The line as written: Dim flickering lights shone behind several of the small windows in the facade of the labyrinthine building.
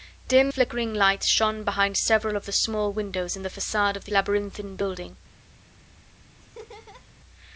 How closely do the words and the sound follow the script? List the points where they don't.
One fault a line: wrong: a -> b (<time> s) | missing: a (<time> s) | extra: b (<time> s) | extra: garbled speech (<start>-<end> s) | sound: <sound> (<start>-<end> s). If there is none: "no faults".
sound: laugh (6.4-7.1 s)